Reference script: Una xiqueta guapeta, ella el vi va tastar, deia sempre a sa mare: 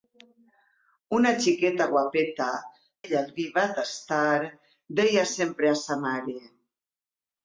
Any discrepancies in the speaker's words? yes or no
no